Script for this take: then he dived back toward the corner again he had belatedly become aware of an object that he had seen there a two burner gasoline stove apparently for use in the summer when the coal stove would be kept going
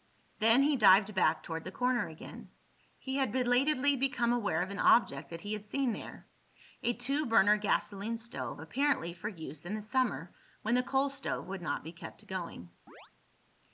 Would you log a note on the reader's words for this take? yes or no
yes